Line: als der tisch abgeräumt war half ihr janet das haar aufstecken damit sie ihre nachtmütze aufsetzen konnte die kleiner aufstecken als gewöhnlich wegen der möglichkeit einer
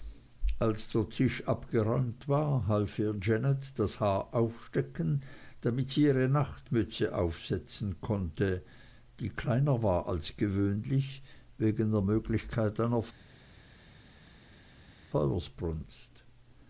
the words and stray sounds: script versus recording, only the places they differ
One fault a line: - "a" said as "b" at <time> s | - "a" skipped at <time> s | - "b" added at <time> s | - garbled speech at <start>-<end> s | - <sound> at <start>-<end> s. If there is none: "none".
- "aufstecken" said as "war" at 9.8 s